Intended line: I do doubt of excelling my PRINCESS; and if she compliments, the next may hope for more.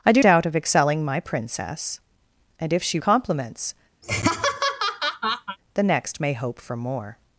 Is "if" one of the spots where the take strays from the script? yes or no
no